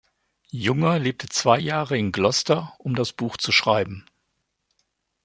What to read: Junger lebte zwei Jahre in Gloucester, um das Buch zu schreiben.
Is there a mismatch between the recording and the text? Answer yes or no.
no